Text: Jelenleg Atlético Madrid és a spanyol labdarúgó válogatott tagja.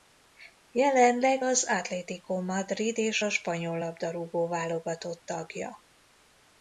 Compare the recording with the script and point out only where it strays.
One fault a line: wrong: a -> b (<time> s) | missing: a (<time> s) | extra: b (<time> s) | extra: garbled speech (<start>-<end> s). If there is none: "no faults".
extra: az (1.4 s)